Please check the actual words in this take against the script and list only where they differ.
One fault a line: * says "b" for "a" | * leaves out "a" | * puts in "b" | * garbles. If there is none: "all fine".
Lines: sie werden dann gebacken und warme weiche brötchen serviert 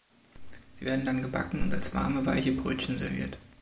* puts in "als"